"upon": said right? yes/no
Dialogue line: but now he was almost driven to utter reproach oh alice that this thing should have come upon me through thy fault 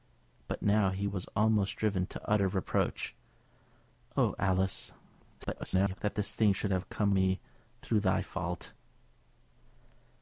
no